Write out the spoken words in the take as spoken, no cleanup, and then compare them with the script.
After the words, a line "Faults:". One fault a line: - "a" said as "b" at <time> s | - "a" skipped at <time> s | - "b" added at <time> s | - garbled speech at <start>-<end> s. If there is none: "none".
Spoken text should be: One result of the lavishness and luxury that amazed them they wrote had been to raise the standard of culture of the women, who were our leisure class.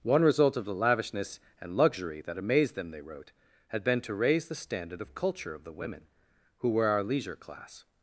One result of the lavishness and luxury that amazed them they wrote had been to raise the standard of culture of the women, who were our leisure class.
Faults:
none